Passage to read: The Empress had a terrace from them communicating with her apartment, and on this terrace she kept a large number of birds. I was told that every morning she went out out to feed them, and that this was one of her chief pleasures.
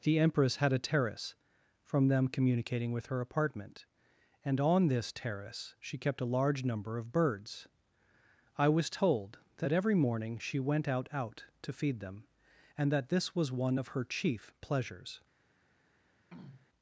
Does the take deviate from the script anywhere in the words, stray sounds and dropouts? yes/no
yes